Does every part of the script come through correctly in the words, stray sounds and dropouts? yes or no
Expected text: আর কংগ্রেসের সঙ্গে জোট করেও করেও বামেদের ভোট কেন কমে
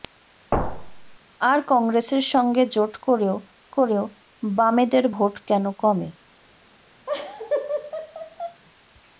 no